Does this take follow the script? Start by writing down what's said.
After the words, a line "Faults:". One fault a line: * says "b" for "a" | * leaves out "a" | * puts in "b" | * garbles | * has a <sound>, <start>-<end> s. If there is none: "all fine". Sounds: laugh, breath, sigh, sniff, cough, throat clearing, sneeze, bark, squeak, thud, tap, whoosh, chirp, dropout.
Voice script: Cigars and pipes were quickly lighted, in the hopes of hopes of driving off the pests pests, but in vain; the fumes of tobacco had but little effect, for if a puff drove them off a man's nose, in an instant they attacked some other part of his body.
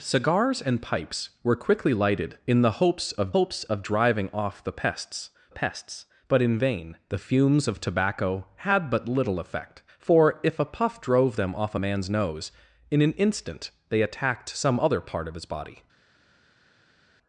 Cigars and pipes were quickly lighted, in the hopes of hopes of driving off the pests pests, but in vain; the fumes of tobacco had but little effect, for if a puff drove them off a man's nose, in an instant they attacked some other part of his body.
Faults:
all fine